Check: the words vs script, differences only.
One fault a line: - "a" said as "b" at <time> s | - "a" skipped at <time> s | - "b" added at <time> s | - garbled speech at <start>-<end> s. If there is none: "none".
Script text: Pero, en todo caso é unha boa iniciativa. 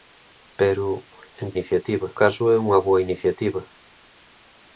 - "todo" said as "iniciativa" at 1.5 s